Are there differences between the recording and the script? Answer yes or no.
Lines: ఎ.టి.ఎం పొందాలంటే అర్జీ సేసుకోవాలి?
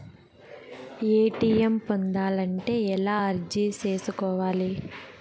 yes